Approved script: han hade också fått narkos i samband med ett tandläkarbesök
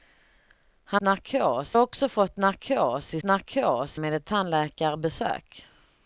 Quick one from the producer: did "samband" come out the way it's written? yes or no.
no